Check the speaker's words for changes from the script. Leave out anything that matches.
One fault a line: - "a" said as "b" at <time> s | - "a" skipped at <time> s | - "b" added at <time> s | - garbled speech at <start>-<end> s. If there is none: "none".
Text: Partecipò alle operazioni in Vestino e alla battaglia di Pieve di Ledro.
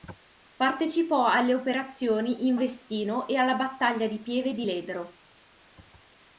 none